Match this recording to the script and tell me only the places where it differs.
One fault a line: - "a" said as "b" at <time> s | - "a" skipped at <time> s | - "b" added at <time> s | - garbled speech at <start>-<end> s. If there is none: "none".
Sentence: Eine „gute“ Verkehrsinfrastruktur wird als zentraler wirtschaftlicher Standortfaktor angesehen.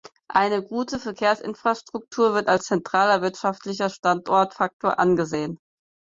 none